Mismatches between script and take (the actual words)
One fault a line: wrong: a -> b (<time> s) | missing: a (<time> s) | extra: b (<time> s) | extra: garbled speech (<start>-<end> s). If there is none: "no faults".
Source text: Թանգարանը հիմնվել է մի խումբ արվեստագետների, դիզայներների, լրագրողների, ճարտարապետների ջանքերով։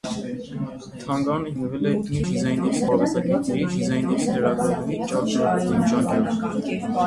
wrong: խումբ -> դիզայներների (2.3 s)